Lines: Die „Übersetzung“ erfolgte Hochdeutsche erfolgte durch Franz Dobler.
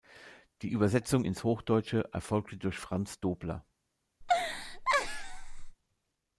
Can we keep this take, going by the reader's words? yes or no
no